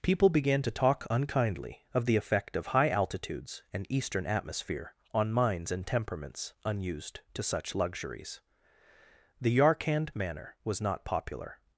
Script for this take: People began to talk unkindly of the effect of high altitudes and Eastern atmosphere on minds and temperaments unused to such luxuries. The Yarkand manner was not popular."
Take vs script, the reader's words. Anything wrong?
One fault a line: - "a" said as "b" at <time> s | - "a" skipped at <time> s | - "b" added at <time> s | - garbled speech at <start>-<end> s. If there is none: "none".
none